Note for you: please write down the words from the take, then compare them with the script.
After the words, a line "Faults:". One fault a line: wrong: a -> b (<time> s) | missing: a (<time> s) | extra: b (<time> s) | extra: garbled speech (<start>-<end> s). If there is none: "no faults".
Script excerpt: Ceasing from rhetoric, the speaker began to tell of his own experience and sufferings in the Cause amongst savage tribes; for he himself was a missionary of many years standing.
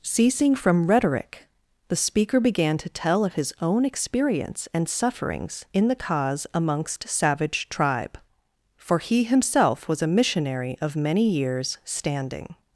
Ceasing from rhetoric, the speaker began to tell of his own experience and sufferings in the Cause amongst savage tribe; for he himself was a missionary of many years standing.
Faults:
wrong: tribes -> tribe (7.7 s)